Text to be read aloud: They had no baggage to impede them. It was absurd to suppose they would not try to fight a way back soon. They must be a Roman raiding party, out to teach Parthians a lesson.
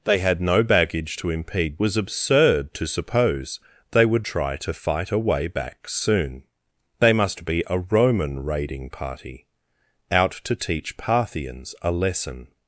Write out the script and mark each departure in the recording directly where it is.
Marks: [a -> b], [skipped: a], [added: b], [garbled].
They had no baggage to impede [skipped: them. It] was absurd to suppose they would [skipped: not] try to fight a way back soon. They must be a Roman raiding party, out to teach Parthians a lesson.